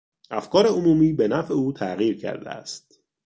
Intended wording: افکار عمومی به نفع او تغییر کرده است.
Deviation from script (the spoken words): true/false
false